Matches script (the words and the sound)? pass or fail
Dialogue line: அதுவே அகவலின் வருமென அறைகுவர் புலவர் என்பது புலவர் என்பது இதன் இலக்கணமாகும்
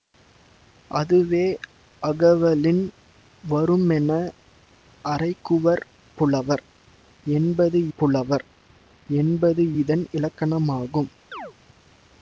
fail